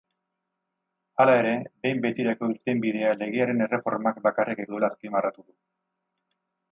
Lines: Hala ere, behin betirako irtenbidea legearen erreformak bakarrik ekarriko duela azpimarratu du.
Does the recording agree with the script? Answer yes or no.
no